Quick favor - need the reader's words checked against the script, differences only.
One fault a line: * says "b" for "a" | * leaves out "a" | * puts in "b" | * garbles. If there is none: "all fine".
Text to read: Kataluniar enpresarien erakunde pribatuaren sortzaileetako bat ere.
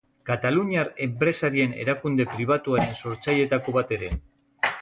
all fine